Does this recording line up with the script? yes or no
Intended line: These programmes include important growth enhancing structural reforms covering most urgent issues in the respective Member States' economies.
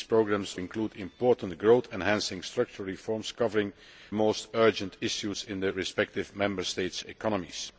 yes